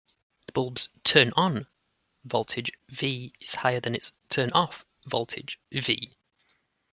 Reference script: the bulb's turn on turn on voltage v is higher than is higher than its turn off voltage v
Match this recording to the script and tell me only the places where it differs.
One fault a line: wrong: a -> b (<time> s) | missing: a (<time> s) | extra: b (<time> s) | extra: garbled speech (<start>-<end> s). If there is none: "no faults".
missing: turn on (1.7 s)
missing: is higher than (3.9 s)